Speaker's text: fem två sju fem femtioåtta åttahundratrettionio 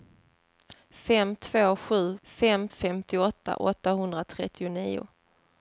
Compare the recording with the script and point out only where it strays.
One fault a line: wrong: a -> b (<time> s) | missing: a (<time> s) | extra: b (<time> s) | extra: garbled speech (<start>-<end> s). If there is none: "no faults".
no faults